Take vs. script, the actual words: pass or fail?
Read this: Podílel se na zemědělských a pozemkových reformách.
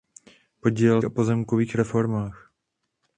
fail